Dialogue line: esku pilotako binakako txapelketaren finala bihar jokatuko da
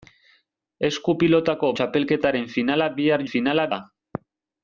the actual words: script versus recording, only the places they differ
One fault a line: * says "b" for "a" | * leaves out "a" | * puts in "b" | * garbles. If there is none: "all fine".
* leaves out "binakako"
* says "finala" for "jokatuko"